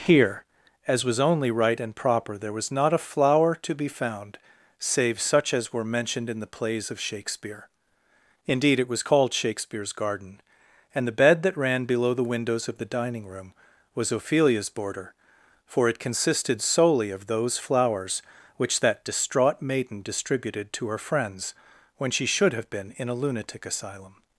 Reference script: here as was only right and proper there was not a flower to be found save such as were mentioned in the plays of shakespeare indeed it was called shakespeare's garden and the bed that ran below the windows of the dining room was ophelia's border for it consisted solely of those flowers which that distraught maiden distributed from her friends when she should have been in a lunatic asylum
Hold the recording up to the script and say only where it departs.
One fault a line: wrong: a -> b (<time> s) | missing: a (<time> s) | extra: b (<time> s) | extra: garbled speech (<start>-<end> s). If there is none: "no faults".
wrong: from -> to (20.7 s)